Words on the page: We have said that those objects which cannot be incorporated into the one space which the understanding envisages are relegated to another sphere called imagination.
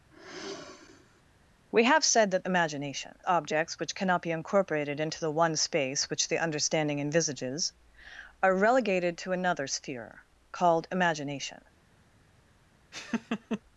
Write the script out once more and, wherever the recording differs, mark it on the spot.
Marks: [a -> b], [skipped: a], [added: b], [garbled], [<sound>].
[sigh] We have said that [those -> imagination] objects which cannot be incorporated into the one space which the understanding envisages are relegated to another sphere called imagination. [laugh]